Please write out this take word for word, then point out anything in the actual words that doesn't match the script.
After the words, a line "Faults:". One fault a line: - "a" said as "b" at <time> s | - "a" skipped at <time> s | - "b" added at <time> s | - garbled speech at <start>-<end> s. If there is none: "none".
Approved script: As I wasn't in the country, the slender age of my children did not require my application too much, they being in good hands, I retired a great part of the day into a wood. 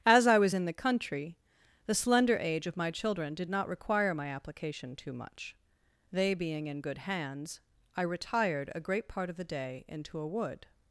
As I was in the country, the slender age of my children did not require my application too much, they being in good hands, I retired a great part of the day into a wood.
Faults:
- "wasn't" said as "was" at 0.4 s